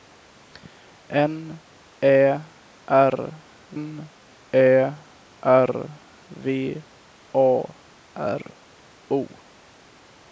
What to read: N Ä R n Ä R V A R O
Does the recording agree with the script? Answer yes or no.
yes